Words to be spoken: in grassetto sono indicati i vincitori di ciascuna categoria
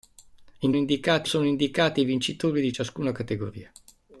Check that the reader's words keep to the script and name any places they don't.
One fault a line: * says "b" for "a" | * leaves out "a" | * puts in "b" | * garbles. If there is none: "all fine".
* says "indicati" for "grassetto"